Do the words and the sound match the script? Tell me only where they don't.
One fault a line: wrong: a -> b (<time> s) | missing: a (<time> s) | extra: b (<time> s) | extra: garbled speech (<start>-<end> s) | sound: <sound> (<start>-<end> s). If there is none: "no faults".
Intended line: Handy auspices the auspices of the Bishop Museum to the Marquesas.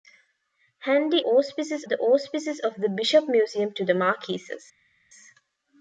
no faults